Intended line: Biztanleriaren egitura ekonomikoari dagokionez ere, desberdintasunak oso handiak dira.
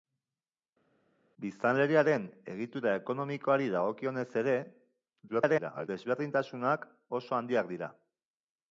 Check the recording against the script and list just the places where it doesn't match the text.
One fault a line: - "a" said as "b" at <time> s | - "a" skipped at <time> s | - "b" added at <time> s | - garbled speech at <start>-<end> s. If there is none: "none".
- garbled speech at 5.3-5.9 s